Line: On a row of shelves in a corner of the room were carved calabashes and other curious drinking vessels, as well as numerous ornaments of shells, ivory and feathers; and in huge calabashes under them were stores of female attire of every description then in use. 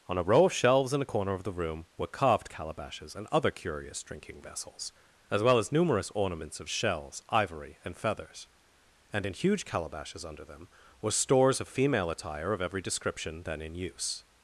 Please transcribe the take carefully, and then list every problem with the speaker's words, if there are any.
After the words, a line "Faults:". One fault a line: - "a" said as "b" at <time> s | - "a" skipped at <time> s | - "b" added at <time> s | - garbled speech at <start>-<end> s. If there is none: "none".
On a row of shelves in a corner of the room were carved calabashes and other curious drinking vessels, as well as numerous ornaments of shells, ivory and feathers; and in huge calabashes under them were stores of female attire of every description then in use.
Faults:
none